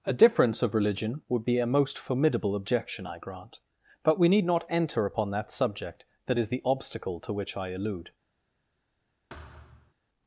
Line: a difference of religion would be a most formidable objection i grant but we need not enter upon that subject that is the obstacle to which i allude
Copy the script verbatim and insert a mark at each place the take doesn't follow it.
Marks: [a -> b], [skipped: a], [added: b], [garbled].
a difference of religion would be a most formidable objection i grant but we need not enter upon that subject that is the obstacle to which i allude